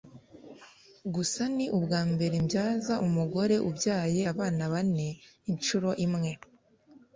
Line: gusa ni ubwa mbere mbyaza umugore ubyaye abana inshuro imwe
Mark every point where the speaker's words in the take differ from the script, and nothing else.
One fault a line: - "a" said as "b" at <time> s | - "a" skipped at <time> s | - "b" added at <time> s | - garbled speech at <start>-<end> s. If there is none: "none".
- "bane" added at 4.7 s